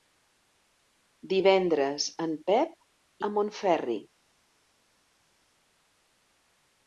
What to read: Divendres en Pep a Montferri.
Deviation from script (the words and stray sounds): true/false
false